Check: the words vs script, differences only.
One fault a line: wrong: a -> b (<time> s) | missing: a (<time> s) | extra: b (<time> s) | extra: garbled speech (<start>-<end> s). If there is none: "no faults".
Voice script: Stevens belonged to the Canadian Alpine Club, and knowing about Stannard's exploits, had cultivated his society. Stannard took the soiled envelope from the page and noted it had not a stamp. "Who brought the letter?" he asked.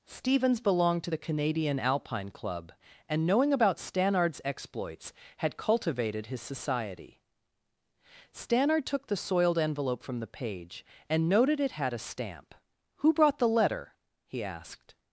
missing: not (11.9 s)